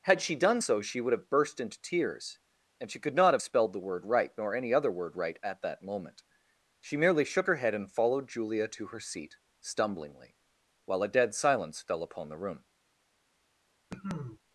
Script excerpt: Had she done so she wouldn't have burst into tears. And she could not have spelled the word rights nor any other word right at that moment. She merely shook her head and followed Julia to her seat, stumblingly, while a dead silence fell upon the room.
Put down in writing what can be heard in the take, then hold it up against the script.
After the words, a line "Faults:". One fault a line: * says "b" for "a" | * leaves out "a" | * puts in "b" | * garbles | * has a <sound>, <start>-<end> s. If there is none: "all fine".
Had she done so she would have burst into tears. And she could not have spelled the word right nor any other word right at that moment. She merely shook her head and followed Julia to her seat, stumblingly, while a dead silence fell upon the room.
Faults:
* says "would" for "wouldn't"
* says "right" for "rights"
* has a cough, 13.9-14.4 s